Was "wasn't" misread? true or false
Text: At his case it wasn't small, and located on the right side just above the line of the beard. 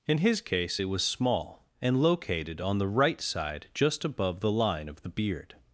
true